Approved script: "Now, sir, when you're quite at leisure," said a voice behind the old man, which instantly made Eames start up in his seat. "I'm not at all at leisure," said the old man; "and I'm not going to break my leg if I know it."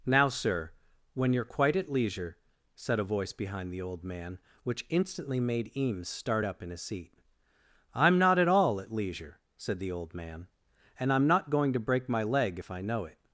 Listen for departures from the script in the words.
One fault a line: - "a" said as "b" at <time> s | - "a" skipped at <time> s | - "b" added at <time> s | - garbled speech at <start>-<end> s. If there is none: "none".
none